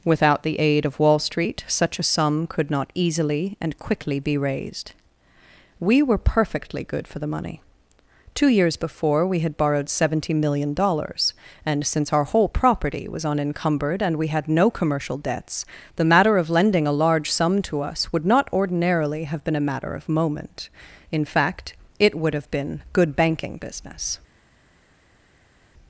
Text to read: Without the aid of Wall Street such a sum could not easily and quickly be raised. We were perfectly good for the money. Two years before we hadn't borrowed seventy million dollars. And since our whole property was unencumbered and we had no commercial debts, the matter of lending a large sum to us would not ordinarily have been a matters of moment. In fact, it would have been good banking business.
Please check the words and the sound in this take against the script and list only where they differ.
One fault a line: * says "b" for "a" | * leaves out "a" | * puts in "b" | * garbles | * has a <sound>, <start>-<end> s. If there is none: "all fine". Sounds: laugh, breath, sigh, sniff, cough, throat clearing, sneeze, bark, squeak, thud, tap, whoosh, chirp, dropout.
* says "had" for "hadn't"
* says "matter" for "matters"